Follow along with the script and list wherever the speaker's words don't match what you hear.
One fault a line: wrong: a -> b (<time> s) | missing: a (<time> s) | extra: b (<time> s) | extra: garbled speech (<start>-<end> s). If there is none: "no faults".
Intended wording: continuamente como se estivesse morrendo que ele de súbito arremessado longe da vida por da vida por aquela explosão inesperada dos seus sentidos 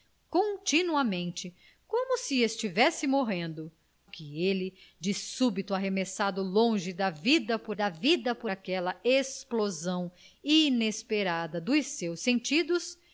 no faults